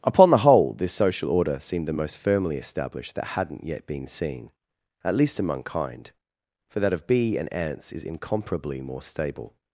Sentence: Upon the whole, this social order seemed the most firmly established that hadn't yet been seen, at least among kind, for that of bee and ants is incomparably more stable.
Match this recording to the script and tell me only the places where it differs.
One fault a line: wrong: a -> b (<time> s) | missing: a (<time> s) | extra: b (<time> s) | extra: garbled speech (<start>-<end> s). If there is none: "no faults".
no faults